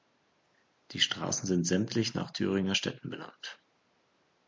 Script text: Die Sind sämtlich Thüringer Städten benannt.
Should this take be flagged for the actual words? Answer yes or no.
yes